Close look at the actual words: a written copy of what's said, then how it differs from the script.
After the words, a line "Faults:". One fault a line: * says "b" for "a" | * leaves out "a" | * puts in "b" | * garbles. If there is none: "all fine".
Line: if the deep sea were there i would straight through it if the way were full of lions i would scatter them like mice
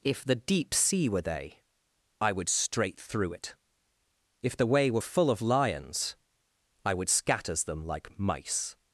if the deep sea were they i would straight through it if the way were full of lions i would scatters them like mice
Faults:
* says "they" for "there"
* says "scatters" for "scatter"